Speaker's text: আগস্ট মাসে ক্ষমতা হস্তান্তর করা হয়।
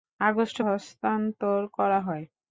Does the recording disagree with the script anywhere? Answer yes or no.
yes